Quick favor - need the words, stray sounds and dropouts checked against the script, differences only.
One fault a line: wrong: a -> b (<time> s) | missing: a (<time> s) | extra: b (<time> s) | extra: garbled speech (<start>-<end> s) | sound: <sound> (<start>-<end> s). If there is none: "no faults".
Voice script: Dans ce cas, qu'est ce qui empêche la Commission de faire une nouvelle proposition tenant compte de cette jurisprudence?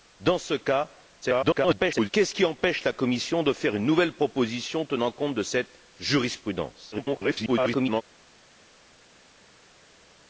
extra: garbled speech (1.2-2.1 s)
extra: garbled speech (6.9-8.0 s)